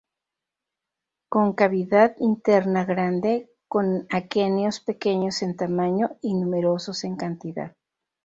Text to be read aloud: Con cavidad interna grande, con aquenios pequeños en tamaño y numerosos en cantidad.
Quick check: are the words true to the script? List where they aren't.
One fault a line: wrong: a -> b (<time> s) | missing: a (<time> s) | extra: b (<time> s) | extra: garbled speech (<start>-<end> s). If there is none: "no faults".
no faults